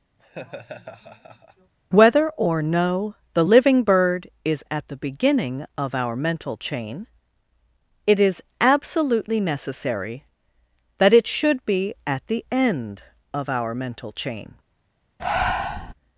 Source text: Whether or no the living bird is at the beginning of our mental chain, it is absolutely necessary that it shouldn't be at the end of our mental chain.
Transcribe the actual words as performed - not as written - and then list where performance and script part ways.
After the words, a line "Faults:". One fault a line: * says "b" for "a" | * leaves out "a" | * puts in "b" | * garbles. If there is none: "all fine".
Whether or no the living bird is at the beginning of our mental chain, it is absolutely necessary that it should be at the end of our mental chain.
Faults:
* says "should" for "shouldn't"